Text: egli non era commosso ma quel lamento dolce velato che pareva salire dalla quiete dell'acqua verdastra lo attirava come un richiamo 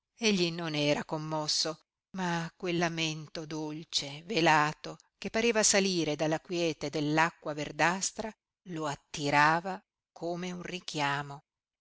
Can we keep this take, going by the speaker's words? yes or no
yes